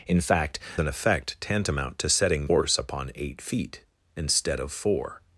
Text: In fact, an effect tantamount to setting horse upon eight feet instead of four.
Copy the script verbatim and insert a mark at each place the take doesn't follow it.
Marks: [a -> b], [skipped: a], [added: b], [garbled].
In fact, an effect tantamount to setting horse upon eight feet instead of four.